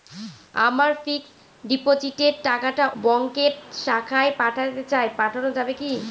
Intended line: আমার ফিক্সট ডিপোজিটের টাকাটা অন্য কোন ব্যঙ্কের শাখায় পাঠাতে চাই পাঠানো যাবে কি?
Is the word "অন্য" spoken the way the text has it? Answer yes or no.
no